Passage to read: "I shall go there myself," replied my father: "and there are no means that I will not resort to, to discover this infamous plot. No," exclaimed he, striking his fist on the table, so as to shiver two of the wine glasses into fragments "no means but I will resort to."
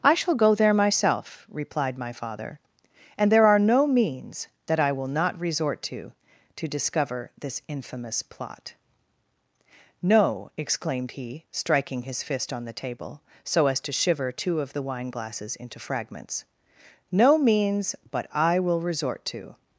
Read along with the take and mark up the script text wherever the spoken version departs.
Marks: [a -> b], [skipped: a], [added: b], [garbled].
"I shall go there myself," replied my father: "and there are no means that I will not resort to, to discover this infamous plot. No," exclaimed he, striking his fist on the table, so as to shiver two of the wine glasses into fragments "no means but I will resort to."